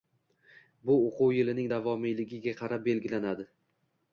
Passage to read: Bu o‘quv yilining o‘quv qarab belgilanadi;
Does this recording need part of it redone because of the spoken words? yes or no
yes